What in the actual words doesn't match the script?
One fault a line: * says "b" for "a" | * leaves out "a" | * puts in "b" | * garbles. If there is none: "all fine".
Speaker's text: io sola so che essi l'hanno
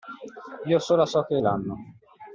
* leaves out "essi"